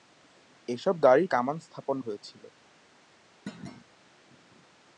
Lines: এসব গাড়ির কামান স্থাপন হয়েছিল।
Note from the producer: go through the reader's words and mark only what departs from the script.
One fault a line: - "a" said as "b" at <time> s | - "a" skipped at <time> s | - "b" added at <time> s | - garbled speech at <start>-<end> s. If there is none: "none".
none